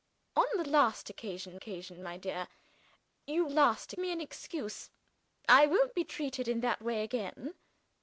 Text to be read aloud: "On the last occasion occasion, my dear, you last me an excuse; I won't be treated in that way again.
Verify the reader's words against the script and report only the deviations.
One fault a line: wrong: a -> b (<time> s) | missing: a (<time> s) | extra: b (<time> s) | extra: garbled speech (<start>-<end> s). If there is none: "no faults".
no faults